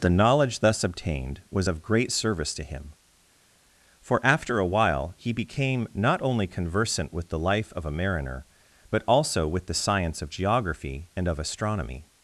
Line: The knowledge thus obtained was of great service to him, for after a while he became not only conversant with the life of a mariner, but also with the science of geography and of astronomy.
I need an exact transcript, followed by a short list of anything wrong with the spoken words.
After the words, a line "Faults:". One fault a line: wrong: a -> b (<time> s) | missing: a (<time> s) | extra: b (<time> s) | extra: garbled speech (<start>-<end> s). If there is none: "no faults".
The knowledge thus obtained was of great service to him, for after a while he became not only conversant with the life of a mariner, but also with the science of geography and of astronomy.
Faults:
no faults